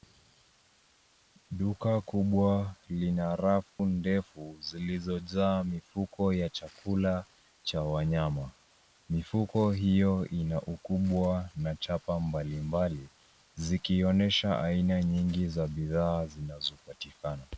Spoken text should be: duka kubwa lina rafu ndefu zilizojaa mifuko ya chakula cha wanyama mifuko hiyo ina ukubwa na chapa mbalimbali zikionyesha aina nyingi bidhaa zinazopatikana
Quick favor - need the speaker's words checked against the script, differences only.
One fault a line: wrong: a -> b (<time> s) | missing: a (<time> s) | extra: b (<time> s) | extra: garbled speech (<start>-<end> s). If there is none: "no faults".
extra: za (15.5 s)